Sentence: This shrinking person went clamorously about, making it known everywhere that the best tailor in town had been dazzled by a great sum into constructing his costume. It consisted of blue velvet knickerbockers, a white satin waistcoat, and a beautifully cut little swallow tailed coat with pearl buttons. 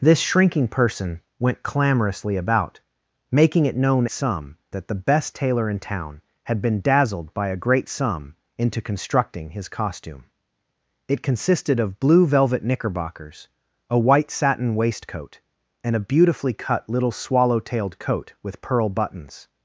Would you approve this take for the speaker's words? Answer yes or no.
no